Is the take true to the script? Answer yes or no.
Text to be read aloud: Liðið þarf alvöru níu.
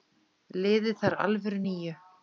yes